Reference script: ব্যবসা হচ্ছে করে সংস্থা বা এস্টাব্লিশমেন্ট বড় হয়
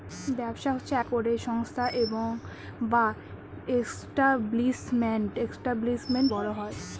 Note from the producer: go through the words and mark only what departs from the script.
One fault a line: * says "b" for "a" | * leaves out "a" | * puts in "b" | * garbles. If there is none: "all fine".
all fine